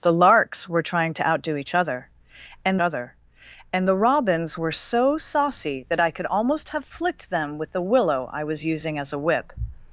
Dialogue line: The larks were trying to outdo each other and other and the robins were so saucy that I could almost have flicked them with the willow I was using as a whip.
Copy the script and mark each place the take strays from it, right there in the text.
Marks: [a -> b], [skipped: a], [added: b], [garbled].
The larks were trying to outdo each other and other and the robins were so saucy that I could almost have flicked them with the willow I was using as a whip.